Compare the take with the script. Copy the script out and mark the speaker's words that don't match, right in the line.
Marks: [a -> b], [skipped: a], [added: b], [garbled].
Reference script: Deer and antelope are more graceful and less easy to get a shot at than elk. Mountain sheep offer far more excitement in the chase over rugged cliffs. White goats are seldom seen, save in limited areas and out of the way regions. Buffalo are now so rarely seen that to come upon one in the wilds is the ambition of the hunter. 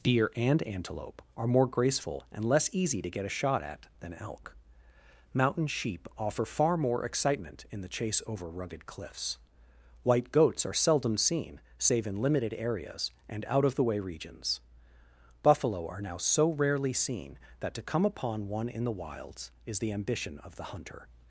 Deer and antelope are more graceful and less easy to get a shot at than elk. Mountain sheep offer far more excitement in the chase over rugged cliffs. White goats are seldom seen, save in limited areas and out of the way regions. Buffalo are now so rarely seen that to come upon one in the wilds is the ambition of the hunter.